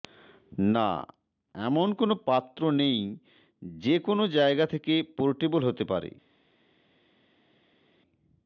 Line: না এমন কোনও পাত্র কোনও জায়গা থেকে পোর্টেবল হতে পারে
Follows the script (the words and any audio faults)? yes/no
no